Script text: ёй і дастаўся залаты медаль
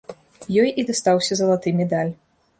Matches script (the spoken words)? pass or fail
pass